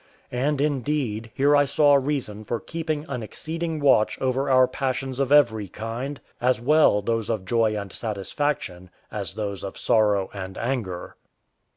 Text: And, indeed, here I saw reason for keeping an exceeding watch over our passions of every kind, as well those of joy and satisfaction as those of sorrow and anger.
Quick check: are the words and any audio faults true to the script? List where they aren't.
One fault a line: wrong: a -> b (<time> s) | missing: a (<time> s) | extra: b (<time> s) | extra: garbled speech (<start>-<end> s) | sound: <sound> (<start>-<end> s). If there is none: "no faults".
no faults